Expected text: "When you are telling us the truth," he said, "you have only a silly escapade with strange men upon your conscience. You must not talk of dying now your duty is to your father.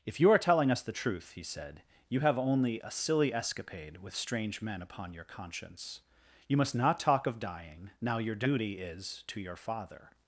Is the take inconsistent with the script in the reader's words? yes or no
yes